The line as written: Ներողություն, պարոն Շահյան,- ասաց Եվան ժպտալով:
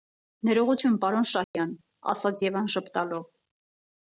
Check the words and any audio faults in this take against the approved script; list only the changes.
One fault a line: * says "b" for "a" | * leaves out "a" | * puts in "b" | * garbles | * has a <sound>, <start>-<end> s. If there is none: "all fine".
* has a dropout, 1.4-1.5 s